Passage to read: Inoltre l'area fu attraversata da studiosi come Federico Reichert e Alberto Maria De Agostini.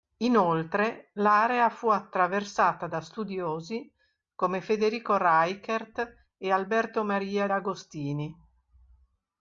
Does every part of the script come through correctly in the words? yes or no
no